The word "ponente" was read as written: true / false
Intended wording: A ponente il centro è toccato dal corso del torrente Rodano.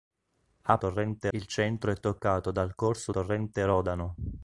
false